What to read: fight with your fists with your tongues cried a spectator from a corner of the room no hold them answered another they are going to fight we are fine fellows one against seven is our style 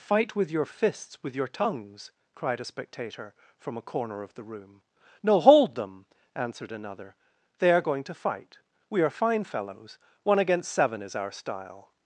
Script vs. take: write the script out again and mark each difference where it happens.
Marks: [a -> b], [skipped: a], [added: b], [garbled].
fight with your fists with your tongues cried a spectator from a corner of the room no hold them answered another they are going to fight we are fine fellows one against seven is our style